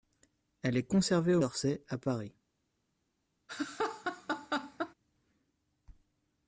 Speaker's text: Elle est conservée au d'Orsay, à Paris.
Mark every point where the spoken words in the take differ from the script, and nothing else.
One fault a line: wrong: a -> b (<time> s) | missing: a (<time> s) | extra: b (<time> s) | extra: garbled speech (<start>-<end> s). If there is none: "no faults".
no faults